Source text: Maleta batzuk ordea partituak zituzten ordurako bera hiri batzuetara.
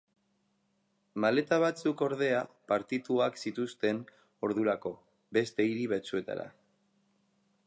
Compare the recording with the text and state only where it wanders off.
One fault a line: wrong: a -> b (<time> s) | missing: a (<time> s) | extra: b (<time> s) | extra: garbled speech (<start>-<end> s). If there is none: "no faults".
wrong: bera -> beste (5.4 s)